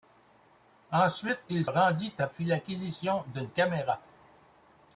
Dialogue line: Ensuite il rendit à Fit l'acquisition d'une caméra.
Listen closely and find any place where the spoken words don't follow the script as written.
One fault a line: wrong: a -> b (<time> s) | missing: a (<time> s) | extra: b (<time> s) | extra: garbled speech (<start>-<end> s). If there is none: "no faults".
no faults